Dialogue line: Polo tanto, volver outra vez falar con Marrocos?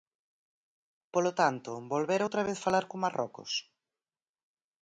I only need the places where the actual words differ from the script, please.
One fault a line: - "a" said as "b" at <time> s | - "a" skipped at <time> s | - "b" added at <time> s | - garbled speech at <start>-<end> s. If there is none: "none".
none